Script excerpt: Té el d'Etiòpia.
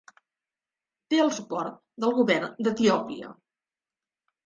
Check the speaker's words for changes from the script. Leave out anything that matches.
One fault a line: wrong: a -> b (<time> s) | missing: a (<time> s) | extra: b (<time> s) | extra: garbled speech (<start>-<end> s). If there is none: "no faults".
extra: suport del govern (1.4 s)